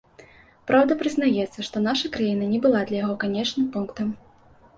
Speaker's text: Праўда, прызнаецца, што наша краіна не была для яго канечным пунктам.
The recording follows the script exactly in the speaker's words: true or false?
true